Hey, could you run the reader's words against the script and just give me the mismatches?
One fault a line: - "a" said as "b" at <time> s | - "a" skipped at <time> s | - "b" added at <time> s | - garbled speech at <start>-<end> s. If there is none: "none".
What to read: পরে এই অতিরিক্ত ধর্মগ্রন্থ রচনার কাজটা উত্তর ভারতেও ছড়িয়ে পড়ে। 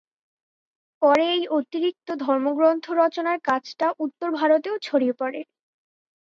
none